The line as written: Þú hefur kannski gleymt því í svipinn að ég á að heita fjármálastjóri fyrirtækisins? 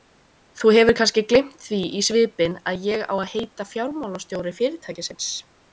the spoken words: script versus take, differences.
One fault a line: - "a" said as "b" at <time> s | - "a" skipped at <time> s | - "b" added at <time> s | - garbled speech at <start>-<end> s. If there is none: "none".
none